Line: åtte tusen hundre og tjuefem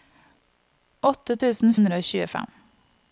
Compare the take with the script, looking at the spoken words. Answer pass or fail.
pass